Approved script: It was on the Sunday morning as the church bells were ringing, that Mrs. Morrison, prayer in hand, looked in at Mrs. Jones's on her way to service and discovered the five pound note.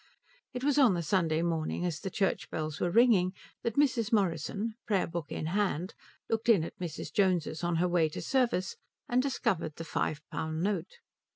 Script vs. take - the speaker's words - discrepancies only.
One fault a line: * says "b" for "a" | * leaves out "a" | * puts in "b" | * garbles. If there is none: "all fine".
* puts in "book"